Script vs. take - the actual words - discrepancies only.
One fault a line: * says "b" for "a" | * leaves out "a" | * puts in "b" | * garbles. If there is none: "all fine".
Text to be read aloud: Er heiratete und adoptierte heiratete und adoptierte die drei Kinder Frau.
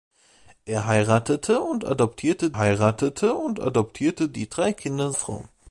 all fine